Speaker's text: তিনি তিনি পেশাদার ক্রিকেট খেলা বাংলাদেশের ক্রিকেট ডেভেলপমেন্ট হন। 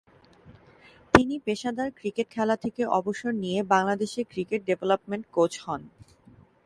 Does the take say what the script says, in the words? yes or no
no